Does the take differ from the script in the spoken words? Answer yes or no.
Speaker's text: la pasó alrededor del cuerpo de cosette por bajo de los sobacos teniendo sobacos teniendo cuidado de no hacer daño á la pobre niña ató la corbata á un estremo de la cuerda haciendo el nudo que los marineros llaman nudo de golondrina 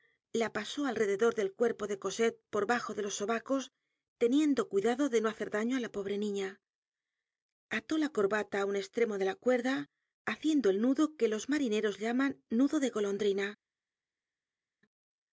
yes